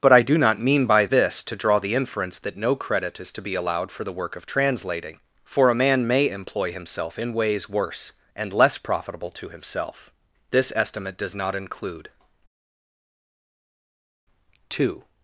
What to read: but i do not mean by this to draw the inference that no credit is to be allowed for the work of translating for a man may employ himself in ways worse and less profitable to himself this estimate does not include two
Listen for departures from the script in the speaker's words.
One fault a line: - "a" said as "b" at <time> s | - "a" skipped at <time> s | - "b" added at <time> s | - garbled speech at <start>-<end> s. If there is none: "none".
none